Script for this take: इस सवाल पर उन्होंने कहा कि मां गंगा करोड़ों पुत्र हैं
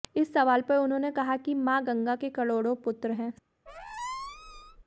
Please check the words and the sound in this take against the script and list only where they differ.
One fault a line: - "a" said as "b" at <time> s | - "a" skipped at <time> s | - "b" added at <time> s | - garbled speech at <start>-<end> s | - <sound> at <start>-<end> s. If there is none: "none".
- "के" added at 2.1 s
- squeak at 3.7-4.8 s